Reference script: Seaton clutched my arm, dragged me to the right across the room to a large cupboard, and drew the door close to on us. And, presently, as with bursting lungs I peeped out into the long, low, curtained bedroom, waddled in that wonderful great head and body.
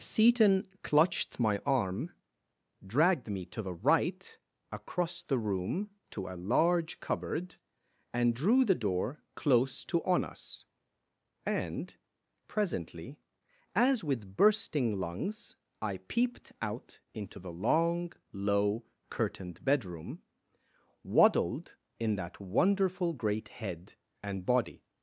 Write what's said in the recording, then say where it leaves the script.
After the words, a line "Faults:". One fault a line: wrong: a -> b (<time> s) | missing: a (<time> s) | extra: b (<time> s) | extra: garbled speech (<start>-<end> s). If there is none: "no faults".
Seaton clutched my arm, dragged me to the right across the room to a large cupboard, and drew the door close to on us. And, presently, as with bursting lungs I peeped out into the long, low, curtained bedroom, waddled in that wonderful great head and body.
Faults:
no faults